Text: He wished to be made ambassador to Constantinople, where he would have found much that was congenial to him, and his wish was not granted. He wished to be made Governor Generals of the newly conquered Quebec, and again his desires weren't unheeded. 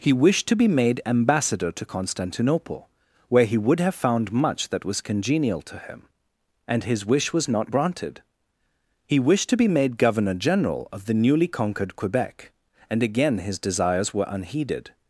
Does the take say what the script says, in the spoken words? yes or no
no